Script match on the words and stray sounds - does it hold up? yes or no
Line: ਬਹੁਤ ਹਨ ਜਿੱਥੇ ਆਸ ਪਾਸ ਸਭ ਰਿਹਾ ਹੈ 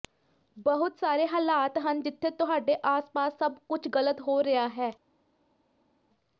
no